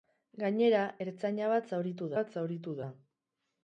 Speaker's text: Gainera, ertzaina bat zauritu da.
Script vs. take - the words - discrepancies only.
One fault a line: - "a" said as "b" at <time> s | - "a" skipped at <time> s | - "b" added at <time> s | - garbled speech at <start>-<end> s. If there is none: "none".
- "bat zauritu" added at 2.2 s